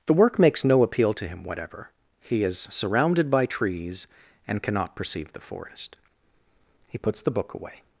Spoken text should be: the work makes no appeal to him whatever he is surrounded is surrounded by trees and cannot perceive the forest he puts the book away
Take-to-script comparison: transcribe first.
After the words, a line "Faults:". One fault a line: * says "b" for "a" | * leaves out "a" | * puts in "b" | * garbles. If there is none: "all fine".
the work makes no appeal to him whatever he is surrounded by trees and cannot perceive the forest he puts the book away
Faults:
* leaves out "is surrounded"